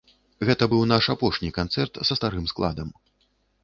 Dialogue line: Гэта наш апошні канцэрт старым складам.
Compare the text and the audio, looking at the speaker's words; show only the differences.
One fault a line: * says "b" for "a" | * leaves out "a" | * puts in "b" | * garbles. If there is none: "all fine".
* puts in "быў"
* puts in "са"